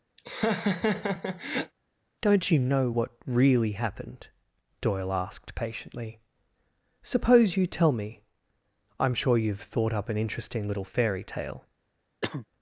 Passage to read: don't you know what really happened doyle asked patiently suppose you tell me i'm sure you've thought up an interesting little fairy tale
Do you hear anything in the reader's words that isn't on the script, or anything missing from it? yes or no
no